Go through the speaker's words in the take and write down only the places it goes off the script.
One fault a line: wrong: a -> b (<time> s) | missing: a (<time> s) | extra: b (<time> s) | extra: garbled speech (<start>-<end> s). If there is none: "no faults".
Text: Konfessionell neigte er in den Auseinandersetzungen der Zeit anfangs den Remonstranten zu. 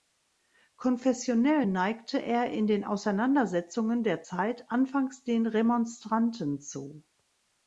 no faults